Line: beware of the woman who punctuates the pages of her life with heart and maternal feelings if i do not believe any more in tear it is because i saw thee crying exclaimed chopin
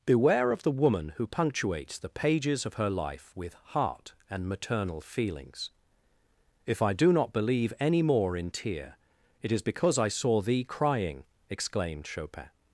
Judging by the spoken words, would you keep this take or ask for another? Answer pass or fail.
pass